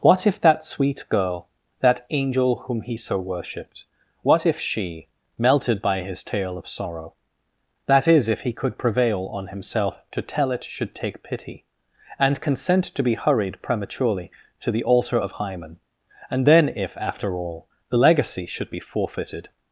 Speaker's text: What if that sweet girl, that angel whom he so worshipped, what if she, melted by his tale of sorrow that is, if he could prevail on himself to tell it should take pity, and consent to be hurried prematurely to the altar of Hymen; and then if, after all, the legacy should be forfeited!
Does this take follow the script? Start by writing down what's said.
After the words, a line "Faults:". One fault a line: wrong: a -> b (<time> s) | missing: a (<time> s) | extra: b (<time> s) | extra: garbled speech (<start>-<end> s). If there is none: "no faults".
What if that sweet girl, that angel whom he so worshipped, what if she, melted by his tale of sorrow that is, if he could prevail on himself to tell it should take pity, and consent to be hurried prematurely to the altar of Hymen; and then if, after all, the legacy should be forfeited!
Faults:
no faults